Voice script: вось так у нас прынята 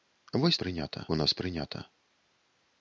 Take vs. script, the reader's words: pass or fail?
fail